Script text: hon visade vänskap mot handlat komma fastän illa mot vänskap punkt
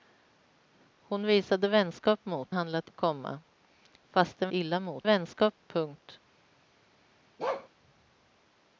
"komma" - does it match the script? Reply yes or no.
yes